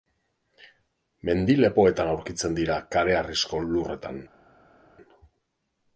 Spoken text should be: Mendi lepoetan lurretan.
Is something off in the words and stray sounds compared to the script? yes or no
yes